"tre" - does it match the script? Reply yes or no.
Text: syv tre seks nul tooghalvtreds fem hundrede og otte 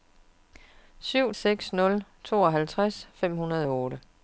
no